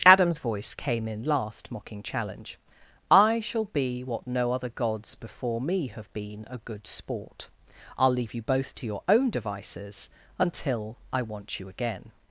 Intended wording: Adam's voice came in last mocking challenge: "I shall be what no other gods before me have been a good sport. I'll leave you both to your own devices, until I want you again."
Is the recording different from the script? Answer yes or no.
no